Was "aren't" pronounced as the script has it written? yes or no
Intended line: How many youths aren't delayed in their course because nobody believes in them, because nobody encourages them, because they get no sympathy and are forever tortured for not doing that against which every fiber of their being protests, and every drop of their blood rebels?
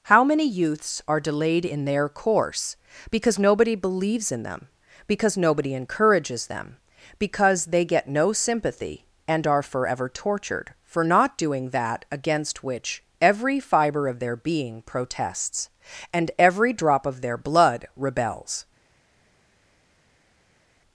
no